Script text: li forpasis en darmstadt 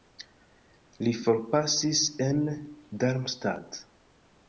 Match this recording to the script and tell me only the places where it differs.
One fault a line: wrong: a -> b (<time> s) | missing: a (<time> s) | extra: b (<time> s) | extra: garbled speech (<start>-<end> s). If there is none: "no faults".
no faults